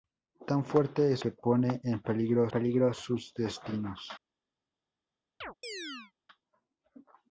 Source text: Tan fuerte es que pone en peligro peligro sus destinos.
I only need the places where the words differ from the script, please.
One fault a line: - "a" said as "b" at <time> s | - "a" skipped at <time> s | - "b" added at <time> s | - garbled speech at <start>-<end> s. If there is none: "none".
none